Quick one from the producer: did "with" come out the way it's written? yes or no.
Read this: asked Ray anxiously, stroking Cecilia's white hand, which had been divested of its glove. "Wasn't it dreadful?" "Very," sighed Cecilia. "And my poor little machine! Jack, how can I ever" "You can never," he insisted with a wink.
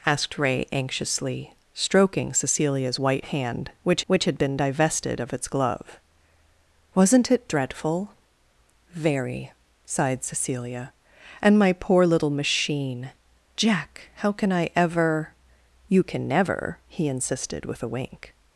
yes